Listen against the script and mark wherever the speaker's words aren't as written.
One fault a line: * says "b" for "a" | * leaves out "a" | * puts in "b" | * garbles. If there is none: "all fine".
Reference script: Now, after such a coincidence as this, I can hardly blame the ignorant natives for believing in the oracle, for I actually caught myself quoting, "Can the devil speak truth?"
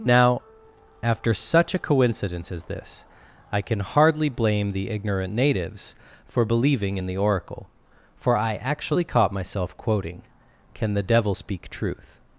all fine